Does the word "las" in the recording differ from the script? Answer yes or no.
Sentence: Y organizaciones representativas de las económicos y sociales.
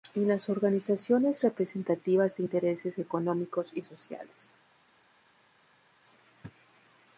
yes